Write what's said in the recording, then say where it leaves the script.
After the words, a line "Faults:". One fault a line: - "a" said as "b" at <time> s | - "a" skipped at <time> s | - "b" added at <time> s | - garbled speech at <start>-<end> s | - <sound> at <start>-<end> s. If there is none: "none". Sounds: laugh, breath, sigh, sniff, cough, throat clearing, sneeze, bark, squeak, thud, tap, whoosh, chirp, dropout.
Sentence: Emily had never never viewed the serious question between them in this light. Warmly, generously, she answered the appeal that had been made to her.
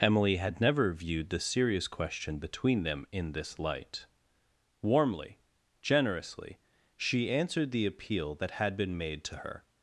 Emily had never viewed the serious question between them in this light. Warmly, generously, she answered the appeal that had been made to her.
Faults:
- "never" skipped at 0.9 s